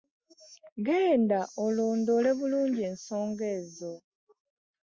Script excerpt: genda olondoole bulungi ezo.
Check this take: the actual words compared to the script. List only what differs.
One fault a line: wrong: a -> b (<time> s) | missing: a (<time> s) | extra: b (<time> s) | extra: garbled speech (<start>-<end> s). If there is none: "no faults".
extra: ensonga (2.9 s)